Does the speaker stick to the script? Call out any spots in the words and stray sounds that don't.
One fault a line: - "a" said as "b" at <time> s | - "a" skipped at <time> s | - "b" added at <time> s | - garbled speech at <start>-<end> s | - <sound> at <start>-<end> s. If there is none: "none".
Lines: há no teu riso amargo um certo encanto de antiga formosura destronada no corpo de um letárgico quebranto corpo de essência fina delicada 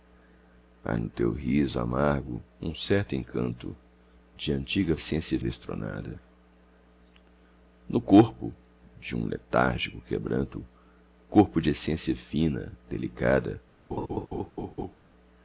- "formosura" said as "essência" at 4.9 s
- laugh at 13.9-15.0 s